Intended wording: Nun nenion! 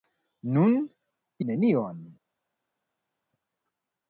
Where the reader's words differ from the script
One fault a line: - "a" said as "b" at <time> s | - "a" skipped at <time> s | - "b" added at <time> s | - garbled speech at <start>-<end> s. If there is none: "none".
none